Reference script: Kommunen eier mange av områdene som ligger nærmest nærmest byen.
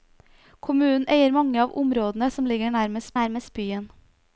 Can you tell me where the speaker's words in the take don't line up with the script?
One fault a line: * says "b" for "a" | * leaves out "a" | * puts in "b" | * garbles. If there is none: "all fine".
all fine